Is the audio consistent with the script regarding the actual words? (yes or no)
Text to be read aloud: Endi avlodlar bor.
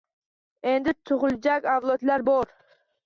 no